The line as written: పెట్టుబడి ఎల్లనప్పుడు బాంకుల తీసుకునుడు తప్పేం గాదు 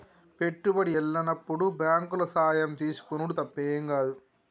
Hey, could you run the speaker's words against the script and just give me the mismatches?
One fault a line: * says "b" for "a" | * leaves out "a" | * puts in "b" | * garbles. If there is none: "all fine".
* puts in "సాయం"